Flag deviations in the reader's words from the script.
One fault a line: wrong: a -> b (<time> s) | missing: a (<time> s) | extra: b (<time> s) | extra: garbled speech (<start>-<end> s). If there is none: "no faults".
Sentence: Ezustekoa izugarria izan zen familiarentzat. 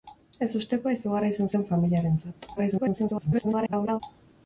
extra: garbled speech (2.6-4.0 s)